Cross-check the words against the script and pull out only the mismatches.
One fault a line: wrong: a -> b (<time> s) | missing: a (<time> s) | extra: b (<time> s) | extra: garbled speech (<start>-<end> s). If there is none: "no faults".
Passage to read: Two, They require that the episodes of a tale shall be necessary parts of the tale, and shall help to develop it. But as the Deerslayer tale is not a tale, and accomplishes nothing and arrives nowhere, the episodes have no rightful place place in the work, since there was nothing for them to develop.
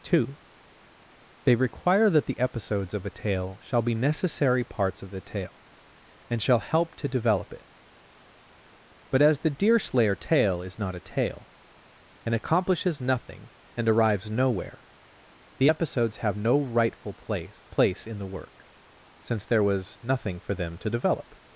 no faults